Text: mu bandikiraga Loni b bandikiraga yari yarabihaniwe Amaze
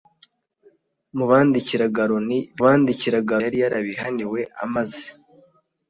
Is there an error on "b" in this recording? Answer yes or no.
no